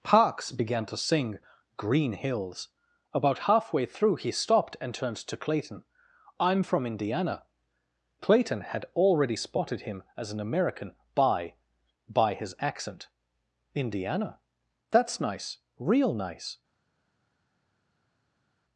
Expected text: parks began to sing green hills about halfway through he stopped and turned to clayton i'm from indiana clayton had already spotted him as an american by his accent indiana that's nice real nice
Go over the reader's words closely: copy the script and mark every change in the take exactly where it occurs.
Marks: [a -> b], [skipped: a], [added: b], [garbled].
parks began to sing green hills about halfway through he stopped and turned to clayton i'm from indiana clayton had already spotted him as an american by [added: by] his accent indiana that's nice real nice